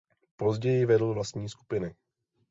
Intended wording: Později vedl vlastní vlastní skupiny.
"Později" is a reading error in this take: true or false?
false